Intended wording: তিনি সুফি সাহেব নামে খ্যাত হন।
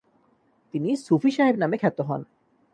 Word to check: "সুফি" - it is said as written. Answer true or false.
true